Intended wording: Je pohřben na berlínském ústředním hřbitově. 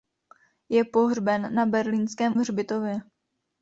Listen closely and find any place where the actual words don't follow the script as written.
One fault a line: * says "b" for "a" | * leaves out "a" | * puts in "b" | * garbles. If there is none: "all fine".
* leaves out "ústředním"